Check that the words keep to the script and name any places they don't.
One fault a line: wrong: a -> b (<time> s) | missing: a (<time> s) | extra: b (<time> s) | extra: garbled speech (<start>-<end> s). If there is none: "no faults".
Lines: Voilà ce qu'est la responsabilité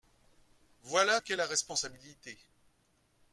missing: ce (1.2 s)